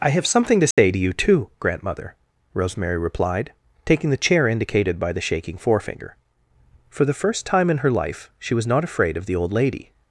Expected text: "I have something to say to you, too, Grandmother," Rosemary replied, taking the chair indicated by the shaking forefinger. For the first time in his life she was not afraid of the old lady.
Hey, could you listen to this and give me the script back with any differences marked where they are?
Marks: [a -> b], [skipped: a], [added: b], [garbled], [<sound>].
"I have something to say [dropout] to you, too, Grandmother," Rosemary replied, taking the chair indicated by the shaking forefinger. For the first time in [his -> her] life she was not afraid of the old lady.